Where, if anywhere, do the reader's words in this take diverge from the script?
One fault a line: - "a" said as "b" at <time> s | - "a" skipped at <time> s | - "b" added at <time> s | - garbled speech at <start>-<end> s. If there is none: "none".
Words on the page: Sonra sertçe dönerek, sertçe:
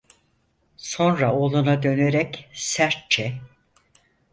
- "sertçe" said as "oğluna" at 1.3 s